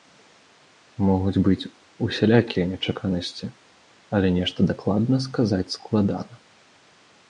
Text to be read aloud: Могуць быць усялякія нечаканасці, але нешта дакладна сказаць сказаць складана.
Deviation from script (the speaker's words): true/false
true